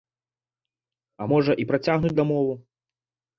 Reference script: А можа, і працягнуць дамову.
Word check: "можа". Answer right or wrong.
right